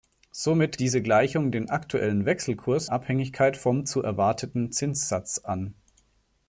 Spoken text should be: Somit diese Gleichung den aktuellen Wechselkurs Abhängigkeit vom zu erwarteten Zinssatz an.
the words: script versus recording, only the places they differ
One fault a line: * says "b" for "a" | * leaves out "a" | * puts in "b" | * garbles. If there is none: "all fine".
all fine